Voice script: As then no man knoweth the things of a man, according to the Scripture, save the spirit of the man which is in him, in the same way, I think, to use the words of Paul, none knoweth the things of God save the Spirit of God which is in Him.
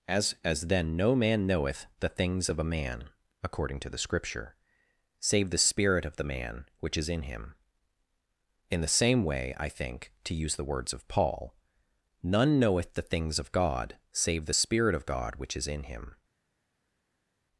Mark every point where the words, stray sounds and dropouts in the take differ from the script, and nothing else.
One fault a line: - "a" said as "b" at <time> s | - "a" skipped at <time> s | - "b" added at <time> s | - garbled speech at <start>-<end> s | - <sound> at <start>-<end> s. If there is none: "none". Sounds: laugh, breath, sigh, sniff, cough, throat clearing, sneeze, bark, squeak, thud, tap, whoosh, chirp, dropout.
- "as" added at 0.4 s